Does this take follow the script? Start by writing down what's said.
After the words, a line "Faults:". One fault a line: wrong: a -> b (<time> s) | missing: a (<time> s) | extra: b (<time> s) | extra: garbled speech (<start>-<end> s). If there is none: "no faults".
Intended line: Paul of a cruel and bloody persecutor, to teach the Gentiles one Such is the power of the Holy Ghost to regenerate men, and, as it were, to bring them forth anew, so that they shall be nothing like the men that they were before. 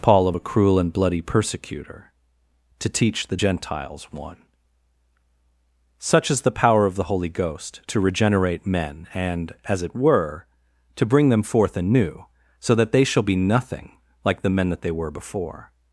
Paul of a cruel and bloody persecutor, to teach the Gentiles one Such is the power of the Holy Ghost to regenerate men, and, as it were, to bring them forth anew, so that they shall be nothing like the men that they were before.
Faults:
no faults